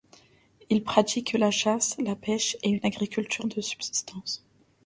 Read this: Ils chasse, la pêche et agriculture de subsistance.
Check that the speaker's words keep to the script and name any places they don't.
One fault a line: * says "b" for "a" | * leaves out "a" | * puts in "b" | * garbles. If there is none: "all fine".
* puts in "pratiquent la"
* puts in "une"